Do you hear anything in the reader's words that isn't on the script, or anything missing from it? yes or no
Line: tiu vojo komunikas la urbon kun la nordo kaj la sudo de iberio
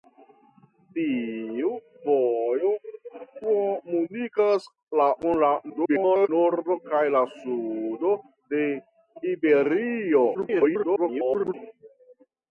yes